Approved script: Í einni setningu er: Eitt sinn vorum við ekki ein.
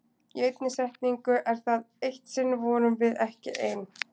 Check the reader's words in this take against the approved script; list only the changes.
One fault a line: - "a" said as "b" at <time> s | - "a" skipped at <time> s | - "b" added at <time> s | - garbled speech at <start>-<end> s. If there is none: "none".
- "það" added at 1.7 s